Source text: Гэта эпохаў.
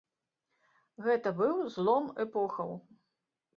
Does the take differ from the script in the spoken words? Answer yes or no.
yes